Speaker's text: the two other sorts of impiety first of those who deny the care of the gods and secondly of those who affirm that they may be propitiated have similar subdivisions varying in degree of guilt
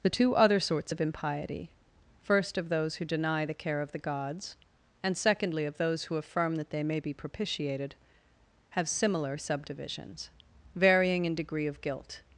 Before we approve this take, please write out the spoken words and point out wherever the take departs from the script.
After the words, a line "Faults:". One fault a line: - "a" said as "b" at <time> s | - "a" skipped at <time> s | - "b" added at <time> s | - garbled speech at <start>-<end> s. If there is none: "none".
the two other sorts of impiety first of those who deny the care of the gods and secondly of those who affirm that they may be propitiated have similar subdivisions varying in degree of guilt
Faults:
none